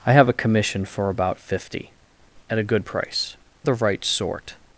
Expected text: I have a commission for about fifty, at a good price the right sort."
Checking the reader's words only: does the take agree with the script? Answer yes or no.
yes